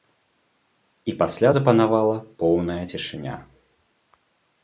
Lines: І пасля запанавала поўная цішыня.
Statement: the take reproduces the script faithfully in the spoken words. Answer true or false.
true